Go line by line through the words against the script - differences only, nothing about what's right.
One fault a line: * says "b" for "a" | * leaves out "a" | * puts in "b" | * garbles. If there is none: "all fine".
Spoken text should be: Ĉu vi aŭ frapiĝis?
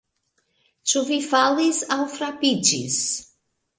* puts in "falis"